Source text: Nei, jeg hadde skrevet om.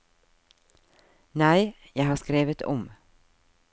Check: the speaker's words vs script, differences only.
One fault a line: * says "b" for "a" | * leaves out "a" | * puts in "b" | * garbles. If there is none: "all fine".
* says "har" for "hadde"